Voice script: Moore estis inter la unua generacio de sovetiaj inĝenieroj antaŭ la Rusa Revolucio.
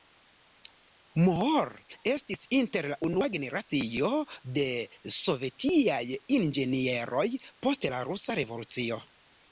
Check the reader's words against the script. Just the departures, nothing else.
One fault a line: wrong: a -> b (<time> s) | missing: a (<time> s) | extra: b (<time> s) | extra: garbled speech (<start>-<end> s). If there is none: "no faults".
wrong: antaŭ -> post (7.7 s)